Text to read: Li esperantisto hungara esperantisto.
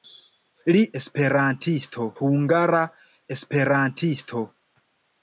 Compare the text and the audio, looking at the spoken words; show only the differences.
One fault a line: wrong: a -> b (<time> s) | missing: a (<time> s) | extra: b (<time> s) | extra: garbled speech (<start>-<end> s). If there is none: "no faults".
no faults